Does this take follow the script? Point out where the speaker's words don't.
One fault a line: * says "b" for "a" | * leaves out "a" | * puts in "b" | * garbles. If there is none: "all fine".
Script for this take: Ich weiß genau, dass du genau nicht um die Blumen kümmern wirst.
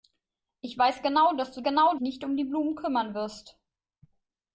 all fine